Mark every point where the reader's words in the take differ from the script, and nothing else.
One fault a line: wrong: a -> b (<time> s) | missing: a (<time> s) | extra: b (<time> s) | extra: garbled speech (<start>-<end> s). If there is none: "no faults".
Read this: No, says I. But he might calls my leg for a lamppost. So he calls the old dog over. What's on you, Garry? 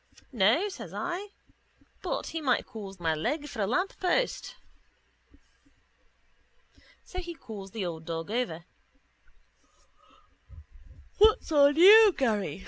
no faults